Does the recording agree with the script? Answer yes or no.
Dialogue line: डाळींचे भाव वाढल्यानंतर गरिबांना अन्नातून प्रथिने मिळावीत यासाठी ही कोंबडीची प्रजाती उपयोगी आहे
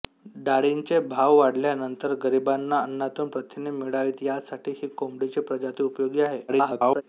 no